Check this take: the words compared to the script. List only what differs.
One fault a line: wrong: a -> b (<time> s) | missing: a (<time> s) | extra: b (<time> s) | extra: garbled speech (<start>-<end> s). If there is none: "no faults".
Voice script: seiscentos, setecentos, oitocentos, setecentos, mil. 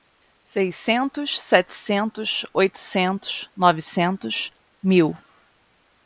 wrong: setecentos -> novecentos (3.5 s)